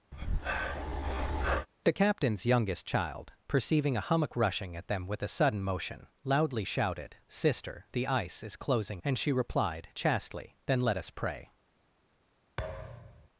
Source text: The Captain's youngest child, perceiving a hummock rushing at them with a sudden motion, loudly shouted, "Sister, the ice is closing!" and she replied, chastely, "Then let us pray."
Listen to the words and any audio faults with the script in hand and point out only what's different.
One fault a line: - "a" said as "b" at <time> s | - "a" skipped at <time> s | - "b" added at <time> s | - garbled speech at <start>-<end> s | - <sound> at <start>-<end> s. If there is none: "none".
- breath at 0.1-1.7 s
- thud at 12.6-13.3 s